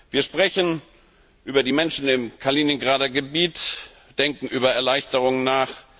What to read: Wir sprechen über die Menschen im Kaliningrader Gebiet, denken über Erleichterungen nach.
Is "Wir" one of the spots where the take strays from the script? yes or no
no